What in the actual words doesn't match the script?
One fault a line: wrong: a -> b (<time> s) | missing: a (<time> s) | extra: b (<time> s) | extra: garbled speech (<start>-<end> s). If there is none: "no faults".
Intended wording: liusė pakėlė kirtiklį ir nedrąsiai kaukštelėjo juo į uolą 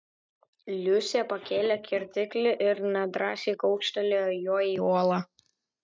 no faults